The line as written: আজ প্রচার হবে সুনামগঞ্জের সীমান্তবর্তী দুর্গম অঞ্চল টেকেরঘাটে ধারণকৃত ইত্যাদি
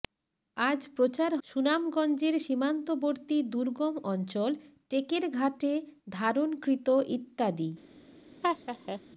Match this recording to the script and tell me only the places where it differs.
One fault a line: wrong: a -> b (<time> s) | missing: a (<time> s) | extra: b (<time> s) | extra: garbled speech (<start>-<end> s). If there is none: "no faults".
missing: হবে (1.3 s)